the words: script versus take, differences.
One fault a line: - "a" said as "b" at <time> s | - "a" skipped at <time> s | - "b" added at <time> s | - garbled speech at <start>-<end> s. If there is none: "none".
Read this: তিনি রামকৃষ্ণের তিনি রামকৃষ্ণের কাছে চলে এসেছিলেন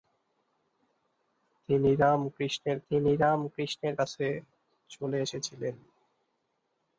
none